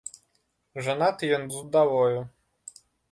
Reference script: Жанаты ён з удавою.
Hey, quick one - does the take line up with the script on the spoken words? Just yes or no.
yes